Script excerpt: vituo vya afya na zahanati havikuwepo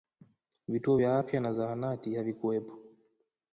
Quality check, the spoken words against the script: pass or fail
pass